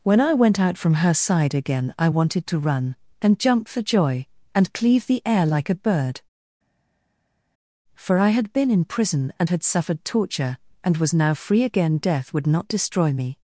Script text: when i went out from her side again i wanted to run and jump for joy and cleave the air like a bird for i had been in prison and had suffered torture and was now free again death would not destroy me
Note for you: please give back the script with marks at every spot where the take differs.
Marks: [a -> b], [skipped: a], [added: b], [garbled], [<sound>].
when i went out from her side again i wanted to run and jump for joy and cleave the air like a bird for i had been in prison and had suffered torture and was now free again death would not destroy me